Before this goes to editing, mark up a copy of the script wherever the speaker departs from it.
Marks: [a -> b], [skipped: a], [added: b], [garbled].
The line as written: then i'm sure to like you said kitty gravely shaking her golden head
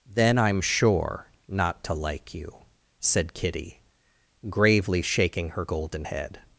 then i'm sure [added: not] to like you said kitty gravely shaking her golden head